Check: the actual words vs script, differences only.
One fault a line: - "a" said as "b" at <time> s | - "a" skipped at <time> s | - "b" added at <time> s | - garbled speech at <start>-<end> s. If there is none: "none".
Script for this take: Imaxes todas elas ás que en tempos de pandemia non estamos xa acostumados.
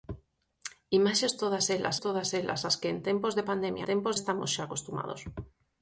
- "todas elas" added at 2.0 s
- "non" said as "tempos" at 3.9 s